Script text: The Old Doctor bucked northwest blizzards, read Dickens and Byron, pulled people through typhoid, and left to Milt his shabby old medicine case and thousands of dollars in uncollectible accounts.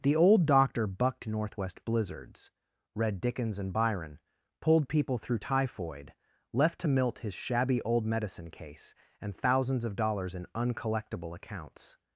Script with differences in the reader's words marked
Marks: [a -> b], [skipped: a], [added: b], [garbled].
The Old Doctor bucked northwest blizzards, read Dickens and Byron, pulled people through typhoid, [skipped: and] left to Milt his shabby old medicine case and thousands of dollars in uncollectible accounts.